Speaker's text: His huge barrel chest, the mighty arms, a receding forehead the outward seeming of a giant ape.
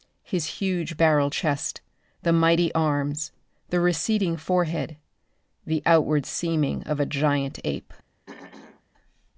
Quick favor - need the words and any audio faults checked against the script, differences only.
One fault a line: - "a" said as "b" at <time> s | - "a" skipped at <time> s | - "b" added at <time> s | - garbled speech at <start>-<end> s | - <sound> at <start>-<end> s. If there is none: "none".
- "a" said as "the" at 3.7 s
- throat clearing at 8.3-8.8 s